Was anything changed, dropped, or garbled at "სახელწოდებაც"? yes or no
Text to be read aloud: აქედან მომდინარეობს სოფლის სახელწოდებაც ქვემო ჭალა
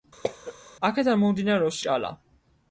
yes